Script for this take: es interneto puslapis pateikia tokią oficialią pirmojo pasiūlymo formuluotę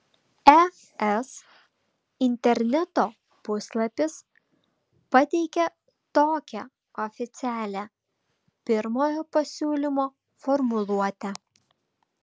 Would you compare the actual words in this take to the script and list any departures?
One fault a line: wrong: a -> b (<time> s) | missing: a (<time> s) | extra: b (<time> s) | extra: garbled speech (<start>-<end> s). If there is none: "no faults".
no faults